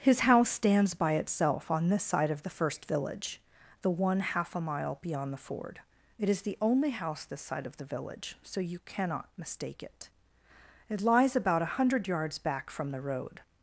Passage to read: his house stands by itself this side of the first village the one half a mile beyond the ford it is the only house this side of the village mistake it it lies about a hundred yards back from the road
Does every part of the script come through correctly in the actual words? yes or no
no